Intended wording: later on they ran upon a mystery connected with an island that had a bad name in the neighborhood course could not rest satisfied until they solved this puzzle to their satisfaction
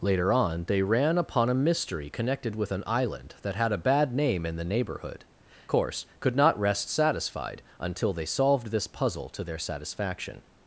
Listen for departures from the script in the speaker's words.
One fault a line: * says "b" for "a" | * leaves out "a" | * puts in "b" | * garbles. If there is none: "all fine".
all fine